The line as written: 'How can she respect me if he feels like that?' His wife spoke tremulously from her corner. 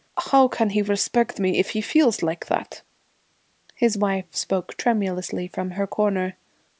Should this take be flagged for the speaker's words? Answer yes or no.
yes